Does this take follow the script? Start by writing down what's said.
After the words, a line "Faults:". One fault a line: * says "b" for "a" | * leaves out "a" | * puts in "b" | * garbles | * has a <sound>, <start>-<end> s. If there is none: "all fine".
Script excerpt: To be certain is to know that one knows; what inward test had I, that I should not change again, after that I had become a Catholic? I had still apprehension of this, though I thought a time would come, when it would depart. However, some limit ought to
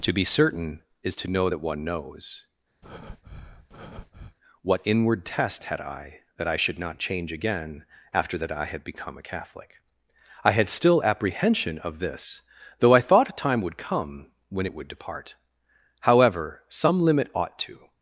To be certain is to know that one knows; what inward test had I, that I should not change again, after that I had become a Catholic? I had still apprehension of this, though I thought a time would come, when it would depart. However, some limit ought to
Faults:
* has a breath, 2.8-4.4 s